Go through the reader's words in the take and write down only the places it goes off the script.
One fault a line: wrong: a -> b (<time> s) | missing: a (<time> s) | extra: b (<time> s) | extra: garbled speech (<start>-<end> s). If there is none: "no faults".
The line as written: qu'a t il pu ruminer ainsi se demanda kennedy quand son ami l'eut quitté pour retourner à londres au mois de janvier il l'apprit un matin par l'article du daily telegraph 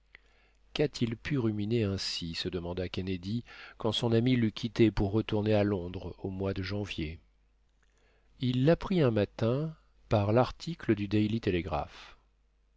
no faults